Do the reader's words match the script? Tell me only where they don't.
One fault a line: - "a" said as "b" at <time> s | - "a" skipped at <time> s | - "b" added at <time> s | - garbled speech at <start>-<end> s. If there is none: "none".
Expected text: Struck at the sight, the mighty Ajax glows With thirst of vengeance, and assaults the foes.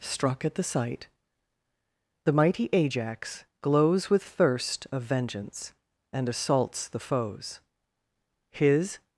- "His" added at 8.5 s